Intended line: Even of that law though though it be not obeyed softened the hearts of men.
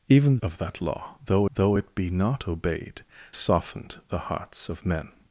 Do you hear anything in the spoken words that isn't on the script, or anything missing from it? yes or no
no